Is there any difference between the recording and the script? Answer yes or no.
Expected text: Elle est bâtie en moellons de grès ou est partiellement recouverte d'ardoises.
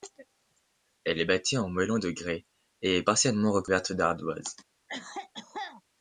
yes